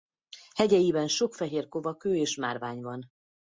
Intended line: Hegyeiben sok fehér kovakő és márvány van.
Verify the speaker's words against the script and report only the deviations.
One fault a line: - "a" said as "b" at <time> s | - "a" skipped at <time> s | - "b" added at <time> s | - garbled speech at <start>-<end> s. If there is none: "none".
none